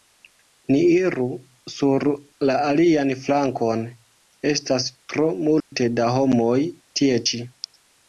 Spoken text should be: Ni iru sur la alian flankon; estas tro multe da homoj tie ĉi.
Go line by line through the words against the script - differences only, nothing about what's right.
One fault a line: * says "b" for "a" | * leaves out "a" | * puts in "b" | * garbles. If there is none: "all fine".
all fine